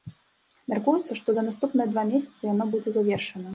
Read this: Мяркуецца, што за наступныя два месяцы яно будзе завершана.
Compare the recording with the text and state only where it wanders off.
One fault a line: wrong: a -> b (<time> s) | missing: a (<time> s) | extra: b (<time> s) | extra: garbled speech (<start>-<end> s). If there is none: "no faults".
no faults